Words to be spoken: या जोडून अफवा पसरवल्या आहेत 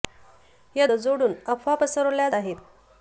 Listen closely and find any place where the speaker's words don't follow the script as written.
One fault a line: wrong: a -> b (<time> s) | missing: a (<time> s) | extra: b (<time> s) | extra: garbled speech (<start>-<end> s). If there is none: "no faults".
no faults